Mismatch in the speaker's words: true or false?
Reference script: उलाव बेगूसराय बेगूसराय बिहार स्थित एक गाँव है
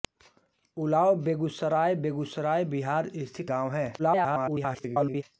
true